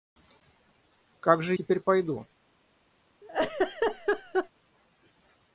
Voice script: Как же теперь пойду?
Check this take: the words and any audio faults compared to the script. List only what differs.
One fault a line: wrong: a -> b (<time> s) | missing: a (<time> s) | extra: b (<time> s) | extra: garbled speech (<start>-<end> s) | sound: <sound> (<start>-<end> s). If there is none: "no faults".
sound: laugh (3.2-4.5 s)